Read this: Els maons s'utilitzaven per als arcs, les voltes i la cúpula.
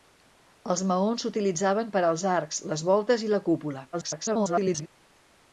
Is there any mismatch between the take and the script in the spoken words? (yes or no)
yes